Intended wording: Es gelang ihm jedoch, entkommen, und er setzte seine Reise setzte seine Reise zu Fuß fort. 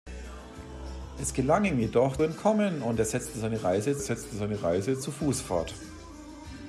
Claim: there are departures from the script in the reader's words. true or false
false